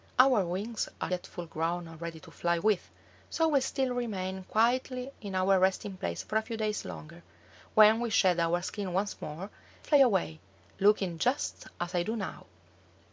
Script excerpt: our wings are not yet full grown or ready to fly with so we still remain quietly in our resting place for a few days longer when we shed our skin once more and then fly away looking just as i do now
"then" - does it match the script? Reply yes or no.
no